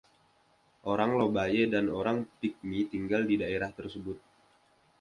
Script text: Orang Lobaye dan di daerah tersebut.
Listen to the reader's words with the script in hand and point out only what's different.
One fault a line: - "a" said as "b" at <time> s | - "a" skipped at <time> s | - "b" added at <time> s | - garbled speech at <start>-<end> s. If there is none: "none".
- "orang Pigmi tinggal" added at 1.9 s